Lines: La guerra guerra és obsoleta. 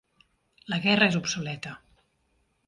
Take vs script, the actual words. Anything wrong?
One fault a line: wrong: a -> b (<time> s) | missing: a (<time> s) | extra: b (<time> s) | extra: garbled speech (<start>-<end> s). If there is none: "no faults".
missing: guerra (1.1 s)